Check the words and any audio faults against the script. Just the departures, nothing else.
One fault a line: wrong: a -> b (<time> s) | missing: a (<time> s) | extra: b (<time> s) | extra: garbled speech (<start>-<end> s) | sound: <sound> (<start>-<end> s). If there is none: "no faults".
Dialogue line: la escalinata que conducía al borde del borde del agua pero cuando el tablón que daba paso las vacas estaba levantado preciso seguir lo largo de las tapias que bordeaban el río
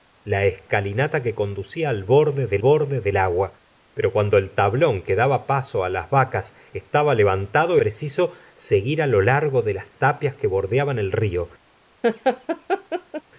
sound: laugh (12.0-13.2 s)